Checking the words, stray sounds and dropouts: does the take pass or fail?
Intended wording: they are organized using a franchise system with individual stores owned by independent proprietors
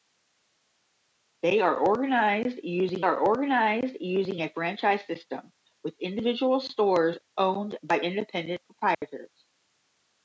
fail